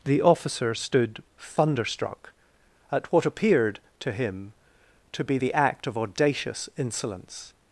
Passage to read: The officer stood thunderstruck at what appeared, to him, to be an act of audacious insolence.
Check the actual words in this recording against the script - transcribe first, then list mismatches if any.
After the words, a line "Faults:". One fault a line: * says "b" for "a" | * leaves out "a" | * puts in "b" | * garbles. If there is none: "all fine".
The officer stood thunderstruck at what appeared, to him, to be the act of audacious insolence.
Faults:
* says "the" for "an"